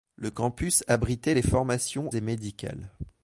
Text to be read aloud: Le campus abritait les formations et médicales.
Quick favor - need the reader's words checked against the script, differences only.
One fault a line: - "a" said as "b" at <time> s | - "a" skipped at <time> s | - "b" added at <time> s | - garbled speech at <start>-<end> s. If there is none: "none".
none